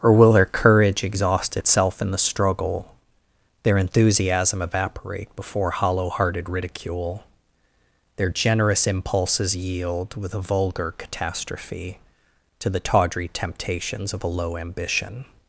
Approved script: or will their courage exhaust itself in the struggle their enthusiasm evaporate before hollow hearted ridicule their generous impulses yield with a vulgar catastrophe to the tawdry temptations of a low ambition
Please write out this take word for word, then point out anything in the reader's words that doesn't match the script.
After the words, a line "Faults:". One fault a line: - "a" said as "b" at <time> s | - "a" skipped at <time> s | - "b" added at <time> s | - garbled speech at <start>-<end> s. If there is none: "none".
or will their courage exhaust itself in the struggle their enthusiasm evaporate before hollow hearted ridicule their generous impulses yield with a vulgar catastrophe to the tawdry temptations of a low ambition
Faults:
none